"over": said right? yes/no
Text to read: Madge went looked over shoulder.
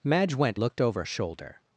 yes